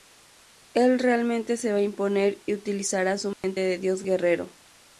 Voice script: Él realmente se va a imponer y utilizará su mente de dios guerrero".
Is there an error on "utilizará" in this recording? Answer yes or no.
no